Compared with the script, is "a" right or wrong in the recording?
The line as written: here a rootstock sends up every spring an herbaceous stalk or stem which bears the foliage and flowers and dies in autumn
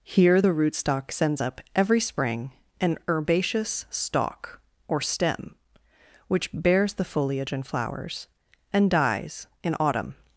wrong